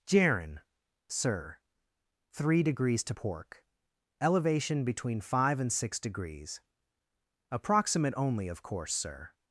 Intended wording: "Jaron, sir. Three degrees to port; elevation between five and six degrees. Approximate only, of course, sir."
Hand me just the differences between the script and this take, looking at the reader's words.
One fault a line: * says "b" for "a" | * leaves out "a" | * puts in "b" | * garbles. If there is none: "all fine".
* says "pork" for "port"